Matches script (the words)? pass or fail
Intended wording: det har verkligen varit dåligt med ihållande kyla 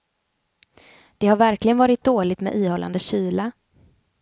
pass